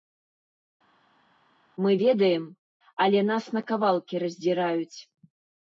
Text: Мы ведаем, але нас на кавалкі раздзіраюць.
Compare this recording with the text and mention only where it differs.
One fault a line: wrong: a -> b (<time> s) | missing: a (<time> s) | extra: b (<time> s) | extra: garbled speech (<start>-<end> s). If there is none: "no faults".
no faults